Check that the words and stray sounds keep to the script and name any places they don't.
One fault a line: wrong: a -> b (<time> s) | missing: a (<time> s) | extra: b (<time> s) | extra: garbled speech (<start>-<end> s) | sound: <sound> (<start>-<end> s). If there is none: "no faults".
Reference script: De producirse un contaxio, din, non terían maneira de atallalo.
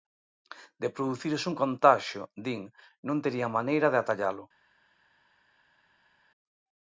no faults